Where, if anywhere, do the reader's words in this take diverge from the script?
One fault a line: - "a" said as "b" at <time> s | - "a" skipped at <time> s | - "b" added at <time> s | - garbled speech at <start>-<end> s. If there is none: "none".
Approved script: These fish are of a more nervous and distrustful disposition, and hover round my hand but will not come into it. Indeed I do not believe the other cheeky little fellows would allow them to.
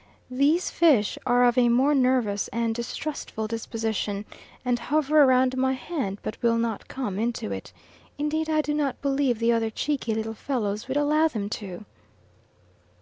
none